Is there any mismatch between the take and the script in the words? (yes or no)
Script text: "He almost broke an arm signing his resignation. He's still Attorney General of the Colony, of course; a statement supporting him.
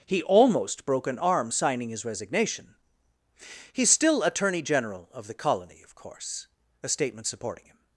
no